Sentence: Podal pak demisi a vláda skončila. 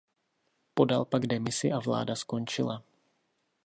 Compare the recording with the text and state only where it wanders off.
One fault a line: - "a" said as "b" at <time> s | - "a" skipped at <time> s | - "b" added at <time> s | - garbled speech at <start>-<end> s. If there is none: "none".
none